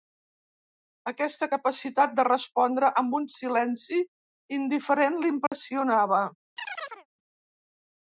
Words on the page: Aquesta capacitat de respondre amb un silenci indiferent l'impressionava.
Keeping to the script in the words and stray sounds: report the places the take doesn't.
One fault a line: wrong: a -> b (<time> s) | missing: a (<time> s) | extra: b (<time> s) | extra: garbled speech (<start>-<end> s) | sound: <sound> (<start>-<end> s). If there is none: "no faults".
sound: dropout (5.5-5.5 s)
sound: chirp (6.6-7.1 s)